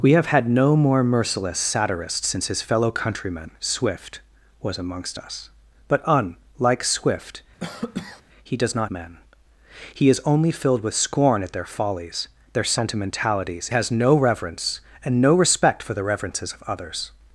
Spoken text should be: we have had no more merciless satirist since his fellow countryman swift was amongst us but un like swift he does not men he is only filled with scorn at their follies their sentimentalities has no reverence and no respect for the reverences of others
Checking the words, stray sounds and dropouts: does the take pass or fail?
fail